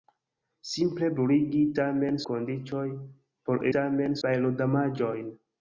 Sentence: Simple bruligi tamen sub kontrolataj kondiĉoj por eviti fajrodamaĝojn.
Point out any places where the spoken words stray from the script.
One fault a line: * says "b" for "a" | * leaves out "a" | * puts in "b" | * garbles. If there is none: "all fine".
* leaves out "sub kontrolataj"
* says "tamen" for "eviti"